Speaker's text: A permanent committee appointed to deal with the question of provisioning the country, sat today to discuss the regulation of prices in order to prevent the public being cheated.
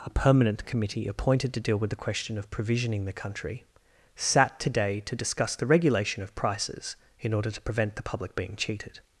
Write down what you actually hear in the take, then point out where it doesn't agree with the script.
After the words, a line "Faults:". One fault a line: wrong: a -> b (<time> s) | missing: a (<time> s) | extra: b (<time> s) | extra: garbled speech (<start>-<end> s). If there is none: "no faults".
A permanent committee appointed to deal with the question of provisioning the country, sat today to discuss the regulation of prices in order to prevent the public being cheated.
Faults:
no faults